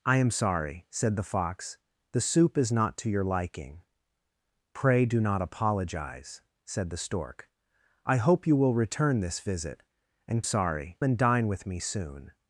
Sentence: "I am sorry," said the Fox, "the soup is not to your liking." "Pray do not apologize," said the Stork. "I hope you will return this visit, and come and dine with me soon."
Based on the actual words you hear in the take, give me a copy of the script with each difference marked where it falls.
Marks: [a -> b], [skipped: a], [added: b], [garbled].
"I am sorry," said the Fox, "the soup is not to your liking." "Pray do not apologize," said the Stork. "I hope you will return this visit, and [come -> sorry] and dine with me soon."